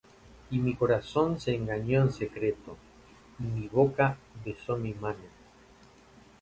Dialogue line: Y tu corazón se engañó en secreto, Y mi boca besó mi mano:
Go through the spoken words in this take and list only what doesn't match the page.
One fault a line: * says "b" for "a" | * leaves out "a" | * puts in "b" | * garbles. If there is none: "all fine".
* says "mi" for "tu"